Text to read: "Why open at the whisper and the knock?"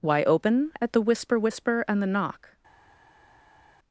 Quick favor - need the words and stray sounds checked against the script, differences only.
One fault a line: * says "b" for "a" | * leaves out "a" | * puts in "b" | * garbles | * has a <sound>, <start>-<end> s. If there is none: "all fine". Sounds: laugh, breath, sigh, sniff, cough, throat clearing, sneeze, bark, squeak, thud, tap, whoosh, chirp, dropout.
* puts in "whisper"